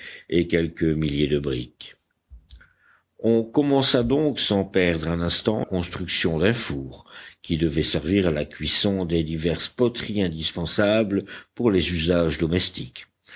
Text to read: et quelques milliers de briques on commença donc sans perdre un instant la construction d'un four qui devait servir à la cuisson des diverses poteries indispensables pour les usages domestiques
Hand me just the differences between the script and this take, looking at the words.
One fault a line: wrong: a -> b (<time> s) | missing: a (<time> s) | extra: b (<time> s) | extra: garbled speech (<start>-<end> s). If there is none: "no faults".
missing: la (5.7 s)